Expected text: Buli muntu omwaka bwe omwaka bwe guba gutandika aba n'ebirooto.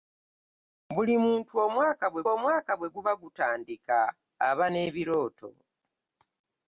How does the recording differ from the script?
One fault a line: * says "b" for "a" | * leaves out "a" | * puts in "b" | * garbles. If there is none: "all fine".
all fine